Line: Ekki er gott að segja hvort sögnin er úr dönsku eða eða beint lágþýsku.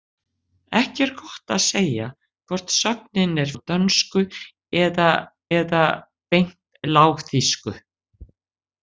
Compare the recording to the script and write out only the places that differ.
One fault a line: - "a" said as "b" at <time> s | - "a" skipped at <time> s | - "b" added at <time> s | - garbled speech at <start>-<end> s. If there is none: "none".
none